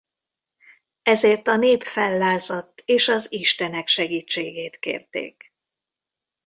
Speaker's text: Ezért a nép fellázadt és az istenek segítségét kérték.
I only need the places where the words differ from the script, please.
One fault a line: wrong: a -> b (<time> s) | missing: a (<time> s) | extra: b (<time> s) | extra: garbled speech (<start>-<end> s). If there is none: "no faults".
no faults